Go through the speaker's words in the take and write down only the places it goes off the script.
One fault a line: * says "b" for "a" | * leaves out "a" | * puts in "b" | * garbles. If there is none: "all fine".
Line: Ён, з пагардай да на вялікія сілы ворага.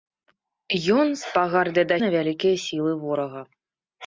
all fine